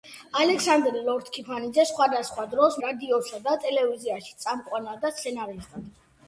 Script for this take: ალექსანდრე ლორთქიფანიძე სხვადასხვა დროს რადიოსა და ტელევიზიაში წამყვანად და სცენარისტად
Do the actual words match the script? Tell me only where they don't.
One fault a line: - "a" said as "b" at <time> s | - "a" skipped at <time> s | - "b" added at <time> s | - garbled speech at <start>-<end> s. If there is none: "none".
none